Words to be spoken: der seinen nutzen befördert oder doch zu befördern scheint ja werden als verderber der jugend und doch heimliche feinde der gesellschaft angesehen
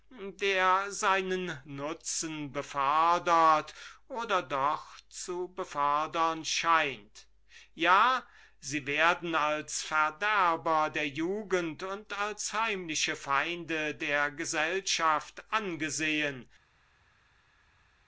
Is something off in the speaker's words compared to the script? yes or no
yes